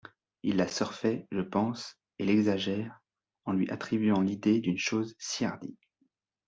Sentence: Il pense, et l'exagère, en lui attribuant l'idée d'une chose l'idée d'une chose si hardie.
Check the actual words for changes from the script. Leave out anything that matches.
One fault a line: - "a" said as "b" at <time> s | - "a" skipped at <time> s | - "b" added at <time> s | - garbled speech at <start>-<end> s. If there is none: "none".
- "la surfait je" added at 0.6 s
- "l'idée d'une chose" skipped at 5.2 s